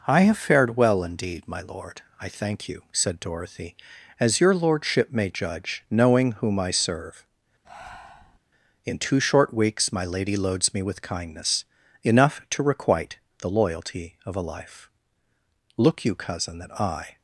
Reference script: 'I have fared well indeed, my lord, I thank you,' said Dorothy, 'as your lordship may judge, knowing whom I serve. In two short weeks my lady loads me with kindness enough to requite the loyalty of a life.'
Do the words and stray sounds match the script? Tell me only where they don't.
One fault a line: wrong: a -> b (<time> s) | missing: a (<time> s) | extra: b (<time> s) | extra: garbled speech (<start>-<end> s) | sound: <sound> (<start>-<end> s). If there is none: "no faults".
sound: breath (7.6-8.4 s)
extra: Look you cousin that I (15.8 s)